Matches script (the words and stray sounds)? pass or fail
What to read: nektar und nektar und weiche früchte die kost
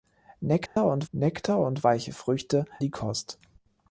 fail